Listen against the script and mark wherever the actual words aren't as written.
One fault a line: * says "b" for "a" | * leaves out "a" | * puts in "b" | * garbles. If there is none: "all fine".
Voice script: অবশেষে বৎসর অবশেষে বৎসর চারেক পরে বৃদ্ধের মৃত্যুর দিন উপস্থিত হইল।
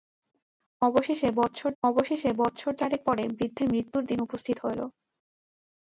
all fine